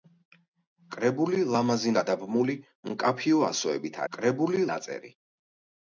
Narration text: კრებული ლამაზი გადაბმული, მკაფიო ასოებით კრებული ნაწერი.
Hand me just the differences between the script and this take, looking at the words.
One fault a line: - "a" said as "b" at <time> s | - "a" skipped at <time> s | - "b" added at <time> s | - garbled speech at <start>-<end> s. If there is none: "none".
none